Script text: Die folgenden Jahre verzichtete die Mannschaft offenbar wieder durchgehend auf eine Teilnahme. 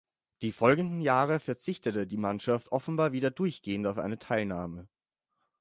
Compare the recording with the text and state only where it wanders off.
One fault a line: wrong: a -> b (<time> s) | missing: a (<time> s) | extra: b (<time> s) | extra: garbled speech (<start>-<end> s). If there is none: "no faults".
no faults